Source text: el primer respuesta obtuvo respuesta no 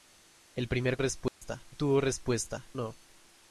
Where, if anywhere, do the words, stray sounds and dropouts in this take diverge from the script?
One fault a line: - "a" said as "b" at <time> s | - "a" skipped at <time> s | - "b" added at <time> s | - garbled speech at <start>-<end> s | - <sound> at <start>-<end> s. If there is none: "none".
- dropout at 1.3-1.4 s